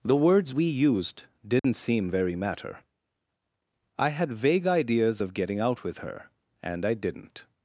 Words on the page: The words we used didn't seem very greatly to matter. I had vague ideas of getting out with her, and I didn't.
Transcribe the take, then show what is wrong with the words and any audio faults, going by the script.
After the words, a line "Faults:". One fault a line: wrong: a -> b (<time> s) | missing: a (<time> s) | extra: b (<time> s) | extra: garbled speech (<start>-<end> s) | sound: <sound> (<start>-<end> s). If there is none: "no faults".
The words we used didn't seem very matter. I had vague ideas of getting out with her, and I didn't.
Faults:
sound: dropout (1.6-1.6 s)
missing: greatly to (2.3 s)